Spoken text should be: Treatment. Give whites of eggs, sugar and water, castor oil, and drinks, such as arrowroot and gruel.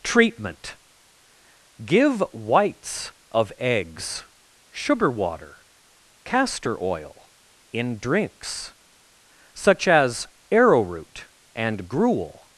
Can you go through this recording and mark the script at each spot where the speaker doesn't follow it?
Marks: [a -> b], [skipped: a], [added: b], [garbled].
Treatment. Give whites of eggs, sugar [skipped: and] water, castor oil, [and -> in] drinks, such as arrowroot and gruel.